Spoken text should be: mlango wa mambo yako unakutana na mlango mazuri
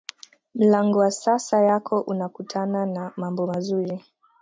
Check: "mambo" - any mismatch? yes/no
yes